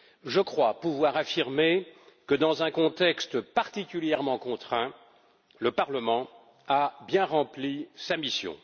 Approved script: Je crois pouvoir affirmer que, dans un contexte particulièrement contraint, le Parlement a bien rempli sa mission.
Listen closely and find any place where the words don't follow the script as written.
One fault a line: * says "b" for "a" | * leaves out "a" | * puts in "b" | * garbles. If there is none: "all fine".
all fine